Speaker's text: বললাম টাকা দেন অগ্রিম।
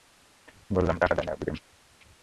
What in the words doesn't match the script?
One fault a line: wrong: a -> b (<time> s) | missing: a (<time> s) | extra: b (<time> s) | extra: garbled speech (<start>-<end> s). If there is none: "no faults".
no faults